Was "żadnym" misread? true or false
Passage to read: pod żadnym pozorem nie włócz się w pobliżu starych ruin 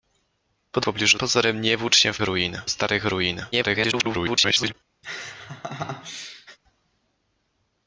true